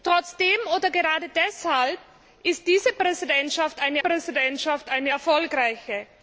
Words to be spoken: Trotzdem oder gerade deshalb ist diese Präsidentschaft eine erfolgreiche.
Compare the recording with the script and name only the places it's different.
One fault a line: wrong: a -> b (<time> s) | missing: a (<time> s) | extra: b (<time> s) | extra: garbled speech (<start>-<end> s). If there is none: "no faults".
extra: Präsidentschaft eine (4.0 s)